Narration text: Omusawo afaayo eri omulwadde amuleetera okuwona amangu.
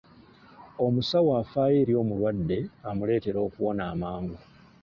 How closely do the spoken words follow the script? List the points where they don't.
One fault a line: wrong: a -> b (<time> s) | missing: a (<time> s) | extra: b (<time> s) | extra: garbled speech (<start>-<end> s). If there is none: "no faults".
no faults